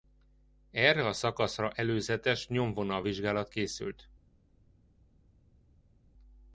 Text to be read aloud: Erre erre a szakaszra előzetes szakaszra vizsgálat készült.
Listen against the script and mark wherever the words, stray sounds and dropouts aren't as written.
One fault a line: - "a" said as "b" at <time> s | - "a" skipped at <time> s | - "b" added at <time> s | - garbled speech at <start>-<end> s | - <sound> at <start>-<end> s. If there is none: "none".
- "erre" skipped at 1.1 s
- "szakaszra" said as "nyomvonal" at 2.5 s